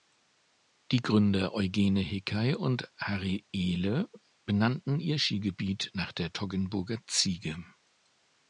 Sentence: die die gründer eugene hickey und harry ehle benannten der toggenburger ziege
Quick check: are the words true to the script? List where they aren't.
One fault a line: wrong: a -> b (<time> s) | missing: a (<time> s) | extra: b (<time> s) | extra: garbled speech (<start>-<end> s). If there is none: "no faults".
missing: die (1.0 s)
extra: ihr skigebiet nach (5.0 s)